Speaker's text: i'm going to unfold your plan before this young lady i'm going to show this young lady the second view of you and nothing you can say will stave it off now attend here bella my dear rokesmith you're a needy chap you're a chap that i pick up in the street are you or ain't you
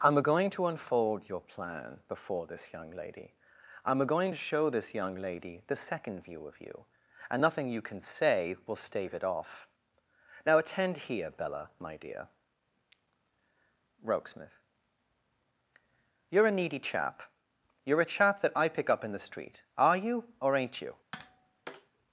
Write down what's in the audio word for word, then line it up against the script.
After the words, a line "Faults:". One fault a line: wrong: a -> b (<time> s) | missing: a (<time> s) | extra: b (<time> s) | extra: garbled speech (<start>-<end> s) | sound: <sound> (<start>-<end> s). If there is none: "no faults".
i'm going to unfold your plan before this young lady i'm going to show this young lady the second view of you and nothing you can say will stave it off now attend here bella my dear rokesmith you're a needy chap you're a chap that i pick up in the street are you or ain't you
Faults:
sound: tap (21.1-21.9 s)